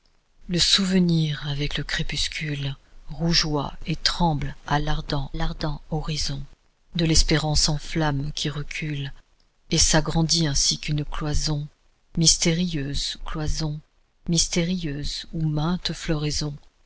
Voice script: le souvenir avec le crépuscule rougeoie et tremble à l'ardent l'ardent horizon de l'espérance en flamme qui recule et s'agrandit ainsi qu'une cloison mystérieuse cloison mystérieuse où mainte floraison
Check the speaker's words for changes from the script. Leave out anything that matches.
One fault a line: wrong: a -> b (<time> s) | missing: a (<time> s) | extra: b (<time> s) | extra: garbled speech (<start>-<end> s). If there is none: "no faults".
no faults